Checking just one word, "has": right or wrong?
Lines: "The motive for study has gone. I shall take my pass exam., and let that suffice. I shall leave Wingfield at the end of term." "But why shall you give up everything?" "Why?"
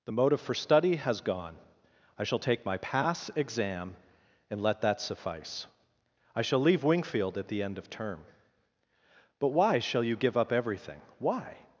right